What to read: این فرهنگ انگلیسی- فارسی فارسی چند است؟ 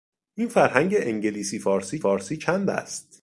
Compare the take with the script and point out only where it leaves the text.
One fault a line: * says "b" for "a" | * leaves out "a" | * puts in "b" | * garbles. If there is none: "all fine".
all fine